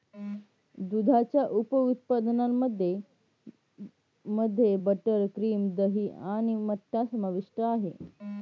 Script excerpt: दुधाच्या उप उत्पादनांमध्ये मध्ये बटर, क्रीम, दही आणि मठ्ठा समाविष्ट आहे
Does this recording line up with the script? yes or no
yes